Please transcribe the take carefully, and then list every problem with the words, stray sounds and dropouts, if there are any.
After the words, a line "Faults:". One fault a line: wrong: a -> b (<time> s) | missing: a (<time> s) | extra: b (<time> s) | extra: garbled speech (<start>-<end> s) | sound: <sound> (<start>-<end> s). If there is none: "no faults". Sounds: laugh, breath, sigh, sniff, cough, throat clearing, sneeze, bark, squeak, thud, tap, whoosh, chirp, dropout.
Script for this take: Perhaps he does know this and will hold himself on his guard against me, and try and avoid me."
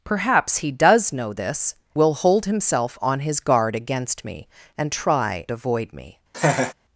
Perhaps he does know this will hold himself on his guard against me, and try avoid me."
Faults:
missing: and (1.8 s)
missing: and (5.5 s)
sound: laugh (6.3-6.7 s)